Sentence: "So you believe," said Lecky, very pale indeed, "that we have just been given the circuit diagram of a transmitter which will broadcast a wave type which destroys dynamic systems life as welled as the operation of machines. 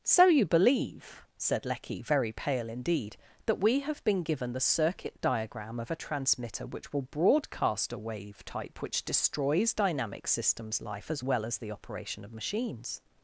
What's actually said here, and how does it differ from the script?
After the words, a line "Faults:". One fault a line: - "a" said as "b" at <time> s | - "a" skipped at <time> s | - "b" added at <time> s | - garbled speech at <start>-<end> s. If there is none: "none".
"So you believe," said Lecky, very pale indeed, "that we have been given the circuit diagram of a transmitter which will broadcast a wave type which destroys dynamic systems life as well as the operation of machines.
Faults:
- "just" skipped at 4.0 s
- "welled" said as "well" at 11.2 s